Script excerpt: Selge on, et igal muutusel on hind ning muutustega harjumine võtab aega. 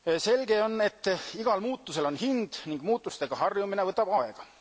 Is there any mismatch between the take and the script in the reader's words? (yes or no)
no